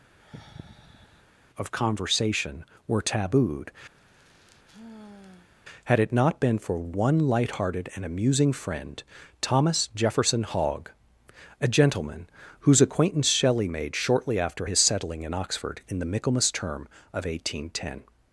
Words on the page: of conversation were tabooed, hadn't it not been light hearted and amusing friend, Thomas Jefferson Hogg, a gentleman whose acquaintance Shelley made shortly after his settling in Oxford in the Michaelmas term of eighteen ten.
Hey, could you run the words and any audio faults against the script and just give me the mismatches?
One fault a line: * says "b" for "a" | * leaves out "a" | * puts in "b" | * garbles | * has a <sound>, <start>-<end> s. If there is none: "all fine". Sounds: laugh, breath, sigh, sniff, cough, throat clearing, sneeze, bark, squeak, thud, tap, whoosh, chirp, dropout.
* has a sigh, 0.2-1.2 s
* has a sigh, 4.0-5.5 s
* says "had" for "hadn't"
* puts in "for one"